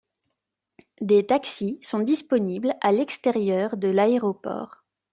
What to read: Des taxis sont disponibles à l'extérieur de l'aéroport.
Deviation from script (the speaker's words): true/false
false